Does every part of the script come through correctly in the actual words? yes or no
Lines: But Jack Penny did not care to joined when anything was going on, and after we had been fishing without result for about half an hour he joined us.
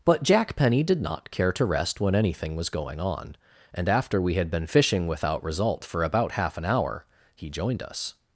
no